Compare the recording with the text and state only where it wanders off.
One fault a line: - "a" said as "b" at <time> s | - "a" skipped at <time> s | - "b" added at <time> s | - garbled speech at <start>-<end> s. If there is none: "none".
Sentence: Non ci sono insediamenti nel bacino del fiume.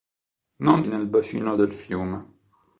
- "ci sono insediamenti" skipped at 0.8 s